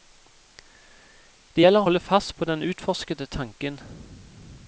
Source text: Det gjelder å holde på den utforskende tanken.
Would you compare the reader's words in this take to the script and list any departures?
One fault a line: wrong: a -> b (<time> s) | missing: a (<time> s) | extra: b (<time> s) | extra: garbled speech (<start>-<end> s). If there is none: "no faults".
extra: fast (2.0 s)